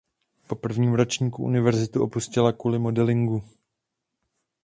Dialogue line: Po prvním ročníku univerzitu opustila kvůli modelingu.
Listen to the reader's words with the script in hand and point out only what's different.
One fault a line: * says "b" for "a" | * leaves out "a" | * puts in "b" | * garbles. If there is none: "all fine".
all fine